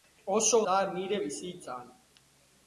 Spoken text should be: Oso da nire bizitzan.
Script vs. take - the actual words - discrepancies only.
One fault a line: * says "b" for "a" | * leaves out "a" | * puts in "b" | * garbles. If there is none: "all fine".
all fine